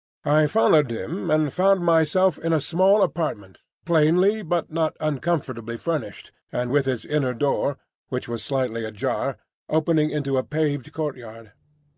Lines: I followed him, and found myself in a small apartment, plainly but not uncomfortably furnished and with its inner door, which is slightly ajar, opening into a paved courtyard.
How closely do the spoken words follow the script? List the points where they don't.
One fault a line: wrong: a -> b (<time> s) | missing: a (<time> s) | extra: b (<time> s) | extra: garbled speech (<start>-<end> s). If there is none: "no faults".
wrong: is -> was (8.3 s)